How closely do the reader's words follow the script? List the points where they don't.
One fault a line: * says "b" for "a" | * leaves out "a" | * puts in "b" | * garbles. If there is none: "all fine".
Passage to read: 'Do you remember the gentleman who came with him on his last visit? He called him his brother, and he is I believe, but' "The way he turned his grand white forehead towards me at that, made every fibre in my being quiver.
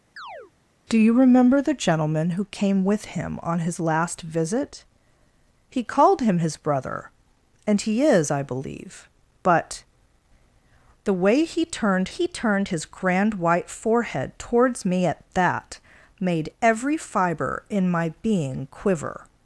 * puts in "he turned"